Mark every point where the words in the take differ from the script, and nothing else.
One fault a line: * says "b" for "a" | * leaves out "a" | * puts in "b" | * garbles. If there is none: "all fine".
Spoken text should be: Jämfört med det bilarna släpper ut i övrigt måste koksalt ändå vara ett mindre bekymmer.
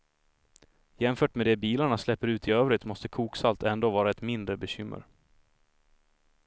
all fine